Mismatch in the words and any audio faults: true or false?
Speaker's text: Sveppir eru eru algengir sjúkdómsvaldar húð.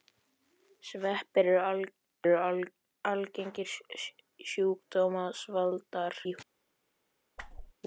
true